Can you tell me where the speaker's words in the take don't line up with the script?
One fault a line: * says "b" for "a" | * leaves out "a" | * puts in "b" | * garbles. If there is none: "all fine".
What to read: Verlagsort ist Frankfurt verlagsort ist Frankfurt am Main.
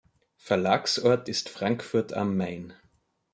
* leaves out "verlagsort ist Frankfurt"